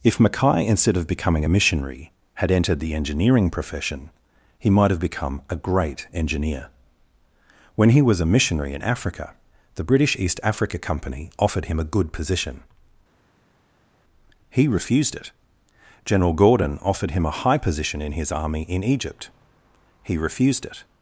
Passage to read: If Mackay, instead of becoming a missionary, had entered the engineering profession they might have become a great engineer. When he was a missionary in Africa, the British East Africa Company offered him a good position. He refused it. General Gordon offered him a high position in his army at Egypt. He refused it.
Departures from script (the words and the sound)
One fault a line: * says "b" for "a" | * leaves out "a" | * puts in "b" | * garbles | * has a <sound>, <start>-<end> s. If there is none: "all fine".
* says "he" for "they"
* says "in" for "at"